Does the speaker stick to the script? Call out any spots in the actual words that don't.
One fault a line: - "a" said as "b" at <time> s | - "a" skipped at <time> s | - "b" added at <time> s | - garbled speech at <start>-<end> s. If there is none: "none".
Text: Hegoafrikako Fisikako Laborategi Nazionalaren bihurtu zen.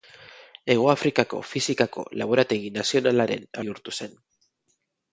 none